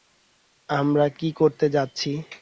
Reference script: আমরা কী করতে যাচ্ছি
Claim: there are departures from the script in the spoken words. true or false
false